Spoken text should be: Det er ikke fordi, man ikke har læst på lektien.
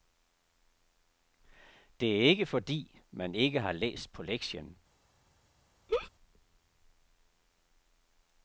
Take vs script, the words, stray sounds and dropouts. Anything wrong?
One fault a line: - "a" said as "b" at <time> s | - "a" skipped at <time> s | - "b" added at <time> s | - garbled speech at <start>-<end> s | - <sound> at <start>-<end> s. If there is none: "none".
- laugh at 5.9-6.1 s